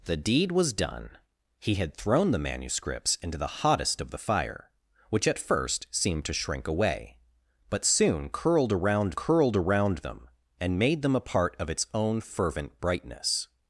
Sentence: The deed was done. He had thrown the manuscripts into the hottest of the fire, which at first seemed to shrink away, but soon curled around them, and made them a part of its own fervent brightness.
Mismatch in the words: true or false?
true